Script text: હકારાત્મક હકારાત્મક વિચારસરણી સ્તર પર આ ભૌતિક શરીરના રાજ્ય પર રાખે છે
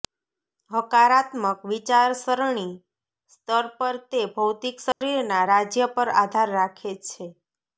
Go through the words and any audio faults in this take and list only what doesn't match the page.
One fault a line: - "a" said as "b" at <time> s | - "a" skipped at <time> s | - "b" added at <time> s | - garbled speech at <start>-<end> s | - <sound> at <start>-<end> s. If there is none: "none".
- "હકારાત્મક" skipped at 1.6 s
- "આ" said as "તે" at 4.1 s
- dropout at 4.9-5.0 s
- "આધાર" added at 6.2 s